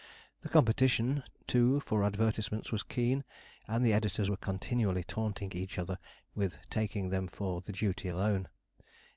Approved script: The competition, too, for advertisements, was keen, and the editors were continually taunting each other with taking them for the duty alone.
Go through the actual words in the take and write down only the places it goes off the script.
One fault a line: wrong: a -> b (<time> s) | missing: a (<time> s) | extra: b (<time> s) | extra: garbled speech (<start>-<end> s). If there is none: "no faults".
no faults